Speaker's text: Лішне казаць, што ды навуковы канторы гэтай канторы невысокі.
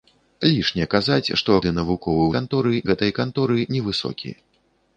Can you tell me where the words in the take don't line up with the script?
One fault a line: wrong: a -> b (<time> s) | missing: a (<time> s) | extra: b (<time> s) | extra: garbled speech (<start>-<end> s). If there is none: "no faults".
no faults